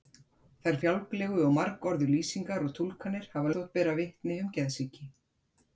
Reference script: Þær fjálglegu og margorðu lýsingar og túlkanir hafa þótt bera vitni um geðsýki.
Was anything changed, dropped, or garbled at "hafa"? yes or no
no